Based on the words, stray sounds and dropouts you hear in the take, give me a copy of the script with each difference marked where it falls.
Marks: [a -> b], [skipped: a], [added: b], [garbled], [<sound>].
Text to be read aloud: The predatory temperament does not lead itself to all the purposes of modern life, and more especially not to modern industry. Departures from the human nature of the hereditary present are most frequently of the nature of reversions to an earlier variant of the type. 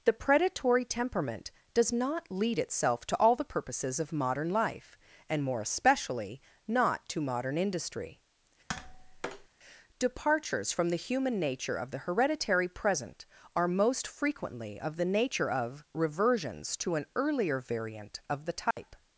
The predatory temperament does not lead itself to all the purposes of modern life, and more especially not to modern industry. [tap] Departures from the human nature of the hereditary present are most frequently of the nature of reversions to an earlier variant of the type. [dropout]